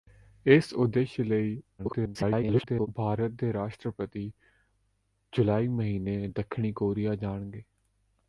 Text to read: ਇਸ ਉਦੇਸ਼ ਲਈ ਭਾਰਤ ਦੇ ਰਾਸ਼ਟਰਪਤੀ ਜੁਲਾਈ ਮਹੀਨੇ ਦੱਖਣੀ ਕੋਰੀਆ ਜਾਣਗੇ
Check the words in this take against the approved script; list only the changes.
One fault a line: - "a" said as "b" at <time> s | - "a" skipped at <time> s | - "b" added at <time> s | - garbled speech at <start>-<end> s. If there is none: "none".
- garbled speech at 1.8-2.9 s